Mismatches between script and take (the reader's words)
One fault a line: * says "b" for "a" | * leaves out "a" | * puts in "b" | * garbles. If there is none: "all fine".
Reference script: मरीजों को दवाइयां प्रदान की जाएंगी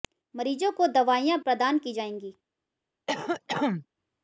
all fine